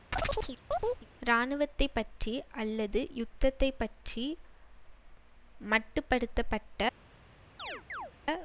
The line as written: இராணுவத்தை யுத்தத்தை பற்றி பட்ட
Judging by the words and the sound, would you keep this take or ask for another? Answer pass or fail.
fail